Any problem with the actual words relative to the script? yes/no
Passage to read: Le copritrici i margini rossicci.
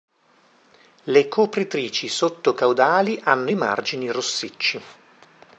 yes